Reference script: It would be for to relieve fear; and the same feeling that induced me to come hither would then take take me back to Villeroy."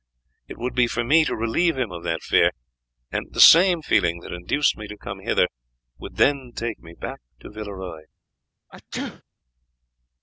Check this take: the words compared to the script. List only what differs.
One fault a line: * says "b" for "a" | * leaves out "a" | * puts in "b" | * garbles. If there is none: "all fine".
* puts in "me"
* puts in "him of that"
* leaves out "take"